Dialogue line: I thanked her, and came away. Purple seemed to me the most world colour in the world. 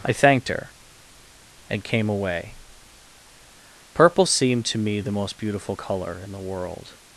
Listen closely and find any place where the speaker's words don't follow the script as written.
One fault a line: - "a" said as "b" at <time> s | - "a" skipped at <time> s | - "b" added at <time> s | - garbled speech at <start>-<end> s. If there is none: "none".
- "world" said as "beautiful" at 5.4 s